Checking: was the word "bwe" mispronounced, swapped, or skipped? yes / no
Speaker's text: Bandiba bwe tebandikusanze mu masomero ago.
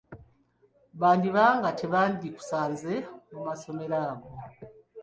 yes